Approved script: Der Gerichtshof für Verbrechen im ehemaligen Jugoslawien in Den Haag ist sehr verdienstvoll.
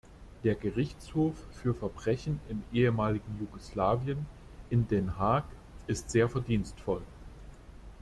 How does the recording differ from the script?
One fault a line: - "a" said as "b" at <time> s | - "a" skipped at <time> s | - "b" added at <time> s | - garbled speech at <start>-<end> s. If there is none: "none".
none